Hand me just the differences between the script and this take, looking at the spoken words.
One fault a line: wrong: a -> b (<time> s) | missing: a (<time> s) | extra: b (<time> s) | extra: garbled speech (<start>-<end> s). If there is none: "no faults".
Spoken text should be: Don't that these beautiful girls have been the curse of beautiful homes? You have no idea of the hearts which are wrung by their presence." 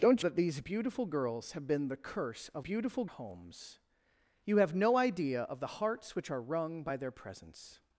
no faults